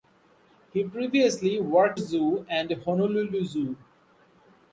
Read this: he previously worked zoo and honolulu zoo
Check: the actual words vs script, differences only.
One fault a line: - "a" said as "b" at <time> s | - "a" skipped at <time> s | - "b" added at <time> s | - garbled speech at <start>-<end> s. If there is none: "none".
none